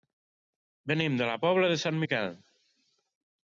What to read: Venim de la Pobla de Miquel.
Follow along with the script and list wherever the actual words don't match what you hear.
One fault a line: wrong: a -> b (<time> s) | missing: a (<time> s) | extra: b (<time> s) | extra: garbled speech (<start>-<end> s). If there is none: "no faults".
extra: Sant (1.8 s)